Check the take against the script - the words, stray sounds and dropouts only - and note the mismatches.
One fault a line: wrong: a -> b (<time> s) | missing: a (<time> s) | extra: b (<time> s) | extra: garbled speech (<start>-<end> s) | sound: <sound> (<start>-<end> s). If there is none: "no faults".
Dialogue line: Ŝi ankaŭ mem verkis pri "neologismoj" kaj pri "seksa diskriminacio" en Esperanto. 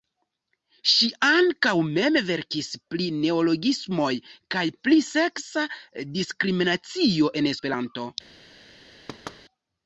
sound: thud (9.1-9.4 s)